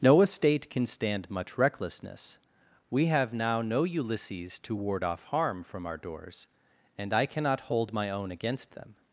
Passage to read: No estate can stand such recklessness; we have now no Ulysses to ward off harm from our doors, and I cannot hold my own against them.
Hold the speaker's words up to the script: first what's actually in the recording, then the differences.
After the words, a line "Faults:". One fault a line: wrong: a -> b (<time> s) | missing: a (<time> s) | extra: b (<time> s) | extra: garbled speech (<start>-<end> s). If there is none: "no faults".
No estate can stand much recklessness; we have now no Ulysses to ward off harm from our doors, and I cannot hold my own against them.
Faults:
wrong: such -> much (1.3 s)